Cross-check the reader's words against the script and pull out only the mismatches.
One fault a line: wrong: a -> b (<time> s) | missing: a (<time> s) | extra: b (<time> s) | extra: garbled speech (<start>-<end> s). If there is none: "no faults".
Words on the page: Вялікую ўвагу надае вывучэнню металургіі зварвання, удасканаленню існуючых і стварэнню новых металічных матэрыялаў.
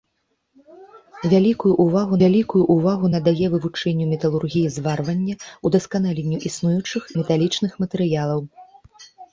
extra: вялікую ўвагу (2.2 s)
missing: і стварэнню новых (7.0 s)